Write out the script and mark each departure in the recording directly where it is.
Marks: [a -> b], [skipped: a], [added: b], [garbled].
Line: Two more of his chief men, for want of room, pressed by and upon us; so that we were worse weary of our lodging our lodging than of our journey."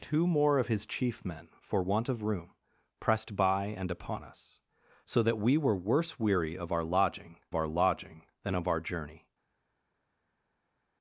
Two more of his chief men, for want of room, pressed by and upon us; so that we were worse weary of our lodging our lodging than of our journey."